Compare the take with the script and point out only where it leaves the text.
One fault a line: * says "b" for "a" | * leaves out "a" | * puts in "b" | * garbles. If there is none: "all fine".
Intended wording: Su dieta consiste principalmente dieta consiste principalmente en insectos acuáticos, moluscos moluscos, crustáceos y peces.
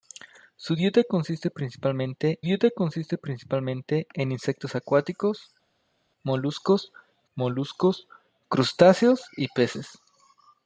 all fine